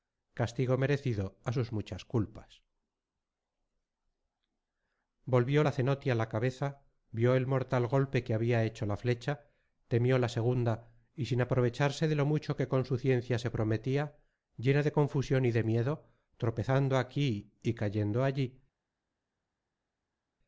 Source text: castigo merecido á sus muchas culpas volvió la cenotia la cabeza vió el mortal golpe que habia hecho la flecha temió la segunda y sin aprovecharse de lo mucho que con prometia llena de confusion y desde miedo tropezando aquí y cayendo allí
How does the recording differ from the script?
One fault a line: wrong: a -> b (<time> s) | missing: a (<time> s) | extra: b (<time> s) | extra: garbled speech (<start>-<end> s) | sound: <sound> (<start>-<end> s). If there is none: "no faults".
extra: su ciencia se (12.8 s)
wrong: desde -> de (15.5 s)